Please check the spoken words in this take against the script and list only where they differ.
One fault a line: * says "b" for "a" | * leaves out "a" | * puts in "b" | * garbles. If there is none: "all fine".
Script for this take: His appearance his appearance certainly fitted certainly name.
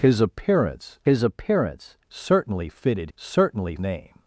all fine